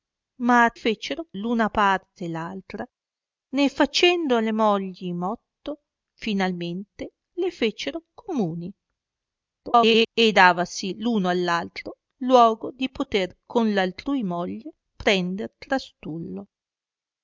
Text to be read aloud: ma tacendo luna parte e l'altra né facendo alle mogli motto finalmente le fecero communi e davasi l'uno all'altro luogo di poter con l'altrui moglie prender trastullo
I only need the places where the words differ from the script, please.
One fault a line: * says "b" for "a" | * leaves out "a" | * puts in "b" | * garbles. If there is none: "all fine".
* says "fecero" for "tacendo"
* garbles